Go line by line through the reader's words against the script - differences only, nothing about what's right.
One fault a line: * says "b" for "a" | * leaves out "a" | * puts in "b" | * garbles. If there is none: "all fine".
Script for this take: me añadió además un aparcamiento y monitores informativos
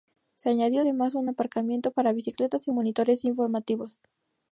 * says "se" for "me"
* puts in "para bicicletas"